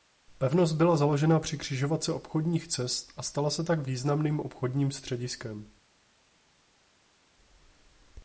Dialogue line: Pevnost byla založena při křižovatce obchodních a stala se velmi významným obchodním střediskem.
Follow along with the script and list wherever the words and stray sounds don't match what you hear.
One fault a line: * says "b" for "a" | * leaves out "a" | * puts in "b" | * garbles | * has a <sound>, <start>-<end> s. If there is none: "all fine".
* puts in "cest"
* says "tak" for "velmi"